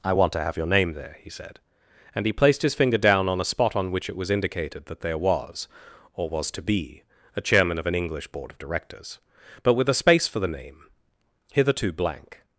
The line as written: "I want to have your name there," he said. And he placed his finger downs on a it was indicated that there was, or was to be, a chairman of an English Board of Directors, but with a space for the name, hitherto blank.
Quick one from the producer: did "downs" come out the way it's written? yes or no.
no